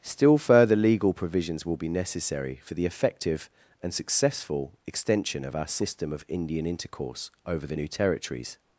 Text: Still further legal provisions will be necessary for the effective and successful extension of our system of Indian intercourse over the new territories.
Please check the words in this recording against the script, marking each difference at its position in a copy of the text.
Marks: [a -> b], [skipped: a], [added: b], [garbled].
Still further legal provisions will be necessary for the effective and successful extension of our system of Indian intercourse over the new territories.